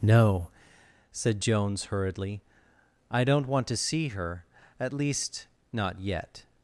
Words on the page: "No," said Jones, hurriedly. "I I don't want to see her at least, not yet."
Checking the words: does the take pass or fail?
fail